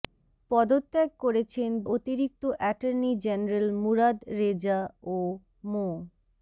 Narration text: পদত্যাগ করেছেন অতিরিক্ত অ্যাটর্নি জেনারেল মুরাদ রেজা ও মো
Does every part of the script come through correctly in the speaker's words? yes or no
yes